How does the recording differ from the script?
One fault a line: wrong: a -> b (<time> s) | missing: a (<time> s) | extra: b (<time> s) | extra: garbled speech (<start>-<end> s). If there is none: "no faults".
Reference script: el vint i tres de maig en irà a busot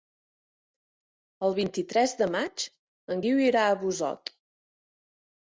extra: guiu (3.3 s)